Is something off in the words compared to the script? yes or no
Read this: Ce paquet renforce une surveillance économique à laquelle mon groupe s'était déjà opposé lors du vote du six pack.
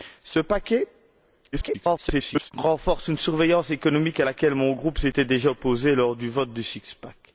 yes